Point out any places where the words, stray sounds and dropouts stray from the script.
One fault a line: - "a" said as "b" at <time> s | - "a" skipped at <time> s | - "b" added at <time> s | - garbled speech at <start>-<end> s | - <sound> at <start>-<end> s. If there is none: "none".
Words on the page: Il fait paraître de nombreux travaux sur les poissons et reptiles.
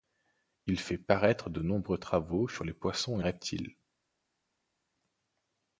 none